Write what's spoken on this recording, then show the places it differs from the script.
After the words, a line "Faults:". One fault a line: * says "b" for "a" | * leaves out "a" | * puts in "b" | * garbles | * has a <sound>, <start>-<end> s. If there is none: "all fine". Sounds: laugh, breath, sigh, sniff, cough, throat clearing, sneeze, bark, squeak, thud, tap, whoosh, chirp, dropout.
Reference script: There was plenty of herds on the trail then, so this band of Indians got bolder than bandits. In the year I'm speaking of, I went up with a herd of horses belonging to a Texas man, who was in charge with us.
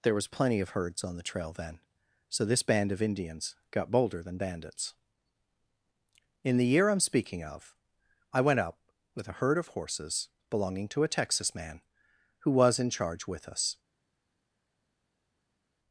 There was plenty of herds on the trail then, so this band of Indians got bolder than bandits. In the year I'm speaking of, I went up with a herd of horses belonging to a Texas man, who was in charge with us.
Faults:
all fine